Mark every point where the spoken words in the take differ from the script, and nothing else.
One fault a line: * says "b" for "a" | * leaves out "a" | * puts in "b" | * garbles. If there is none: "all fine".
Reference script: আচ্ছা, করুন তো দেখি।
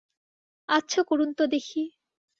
all fine